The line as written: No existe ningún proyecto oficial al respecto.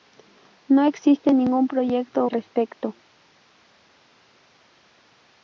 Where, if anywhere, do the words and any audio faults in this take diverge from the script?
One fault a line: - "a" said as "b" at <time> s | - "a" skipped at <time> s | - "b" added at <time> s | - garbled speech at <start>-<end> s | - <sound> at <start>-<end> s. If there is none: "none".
- "oficial al" skipped at 2.3 s